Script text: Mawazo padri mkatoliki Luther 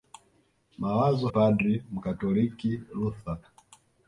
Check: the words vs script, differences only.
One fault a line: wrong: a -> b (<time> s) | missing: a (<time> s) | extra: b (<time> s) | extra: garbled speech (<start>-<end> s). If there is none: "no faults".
no faults